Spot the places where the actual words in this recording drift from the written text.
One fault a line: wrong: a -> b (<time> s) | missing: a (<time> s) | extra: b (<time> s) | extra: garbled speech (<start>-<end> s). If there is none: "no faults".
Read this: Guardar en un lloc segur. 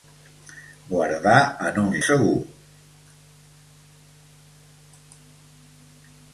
missing: lloc (1.9 s)